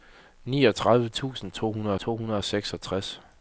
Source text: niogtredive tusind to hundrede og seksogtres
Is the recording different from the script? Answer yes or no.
yes